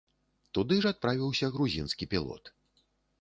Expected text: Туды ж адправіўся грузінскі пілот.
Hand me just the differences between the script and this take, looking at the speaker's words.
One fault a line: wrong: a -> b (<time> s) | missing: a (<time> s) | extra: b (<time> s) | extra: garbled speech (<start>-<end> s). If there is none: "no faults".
no faults